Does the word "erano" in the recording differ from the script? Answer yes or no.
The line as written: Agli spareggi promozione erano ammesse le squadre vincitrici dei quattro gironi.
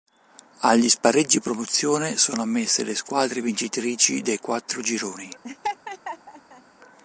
yes